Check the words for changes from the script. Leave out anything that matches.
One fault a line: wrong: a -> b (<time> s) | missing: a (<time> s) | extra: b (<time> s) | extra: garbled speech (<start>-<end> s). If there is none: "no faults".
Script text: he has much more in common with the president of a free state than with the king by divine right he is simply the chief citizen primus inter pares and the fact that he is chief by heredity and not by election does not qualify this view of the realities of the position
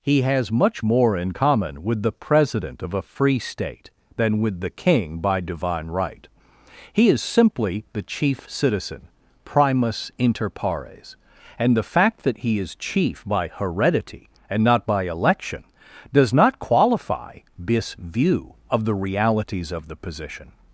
no faults